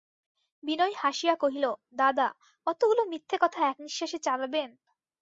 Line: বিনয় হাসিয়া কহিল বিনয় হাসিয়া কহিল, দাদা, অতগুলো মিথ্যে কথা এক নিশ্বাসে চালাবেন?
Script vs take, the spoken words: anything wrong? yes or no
yes